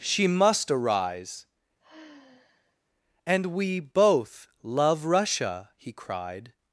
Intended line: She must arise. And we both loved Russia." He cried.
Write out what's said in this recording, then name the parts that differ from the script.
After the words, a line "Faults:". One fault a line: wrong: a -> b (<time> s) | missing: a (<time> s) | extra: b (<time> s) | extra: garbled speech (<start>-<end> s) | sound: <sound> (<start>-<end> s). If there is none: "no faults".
She must arise. And we both love Russia." He cried.
Faults:
sound: sigh (1.8-2.8 s)
wrong: loved -> love (4.6 s)